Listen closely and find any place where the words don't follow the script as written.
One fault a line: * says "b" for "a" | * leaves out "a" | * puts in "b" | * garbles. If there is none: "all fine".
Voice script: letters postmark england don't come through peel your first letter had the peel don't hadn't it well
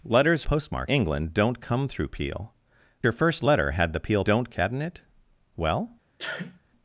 all fine